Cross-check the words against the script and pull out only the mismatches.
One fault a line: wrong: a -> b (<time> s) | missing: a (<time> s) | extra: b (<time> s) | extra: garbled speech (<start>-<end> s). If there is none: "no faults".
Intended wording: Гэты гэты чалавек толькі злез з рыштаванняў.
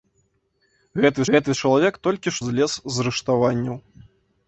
no faults